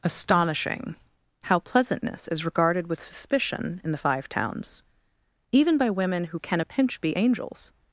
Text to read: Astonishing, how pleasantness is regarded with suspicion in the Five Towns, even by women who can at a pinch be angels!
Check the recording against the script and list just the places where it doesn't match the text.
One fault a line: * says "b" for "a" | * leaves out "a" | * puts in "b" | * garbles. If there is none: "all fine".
* leaves out "at"